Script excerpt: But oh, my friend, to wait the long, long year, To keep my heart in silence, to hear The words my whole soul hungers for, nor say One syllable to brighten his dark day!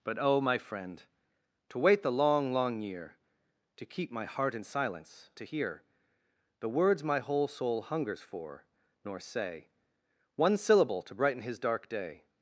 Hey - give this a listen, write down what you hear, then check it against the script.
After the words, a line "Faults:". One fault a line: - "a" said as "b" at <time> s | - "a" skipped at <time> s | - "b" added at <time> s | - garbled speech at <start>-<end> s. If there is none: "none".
But oh, my friend, to wait the long, long year, To keep my heart in silence, to hear The words my whole soul hungers for, nor say One syllable to brighten his dark day!
Faults:
none